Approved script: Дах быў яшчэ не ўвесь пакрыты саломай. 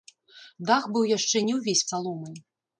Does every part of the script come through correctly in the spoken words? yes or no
no